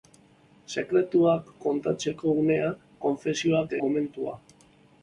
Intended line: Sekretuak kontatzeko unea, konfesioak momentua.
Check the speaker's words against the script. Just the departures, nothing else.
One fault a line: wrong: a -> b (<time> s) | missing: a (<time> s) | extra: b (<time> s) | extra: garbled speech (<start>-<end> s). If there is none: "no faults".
no faults